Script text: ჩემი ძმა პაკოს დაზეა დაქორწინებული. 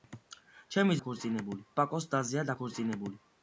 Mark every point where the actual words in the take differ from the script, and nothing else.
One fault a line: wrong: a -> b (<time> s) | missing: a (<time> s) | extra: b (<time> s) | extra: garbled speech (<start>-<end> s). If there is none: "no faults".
wrong: ძმა -> დაქორწინებული (1.0 s)